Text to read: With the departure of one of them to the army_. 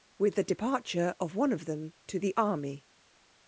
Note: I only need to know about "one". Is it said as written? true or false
true